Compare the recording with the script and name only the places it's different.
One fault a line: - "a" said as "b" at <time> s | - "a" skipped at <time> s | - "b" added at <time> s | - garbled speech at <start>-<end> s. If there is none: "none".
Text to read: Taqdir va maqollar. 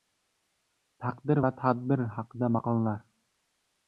- "tadbir haqida" added at 1.6 s